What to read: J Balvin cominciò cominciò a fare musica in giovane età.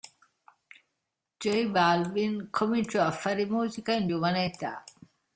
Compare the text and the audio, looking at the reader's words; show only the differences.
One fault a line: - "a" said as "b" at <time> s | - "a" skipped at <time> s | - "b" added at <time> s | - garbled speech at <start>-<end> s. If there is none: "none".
- "cominciò" skipped at 3.0 s